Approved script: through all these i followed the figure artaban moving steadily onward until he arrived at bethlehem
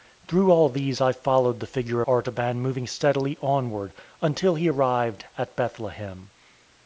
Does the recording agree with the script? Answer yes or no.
yes